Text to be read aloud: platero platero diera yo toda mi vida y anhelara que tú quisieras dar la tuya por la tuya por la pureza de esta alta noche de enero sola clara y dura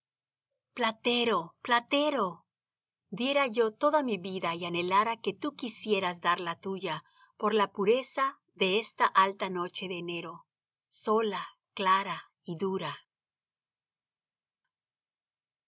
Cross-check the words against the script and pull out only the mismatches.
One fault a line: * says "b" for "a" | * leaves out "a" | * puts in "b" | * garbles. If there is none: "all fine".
* leaves out "tuya por la"